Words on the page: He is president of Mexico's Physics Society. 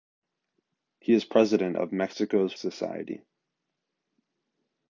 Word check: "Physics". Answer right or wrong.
wrong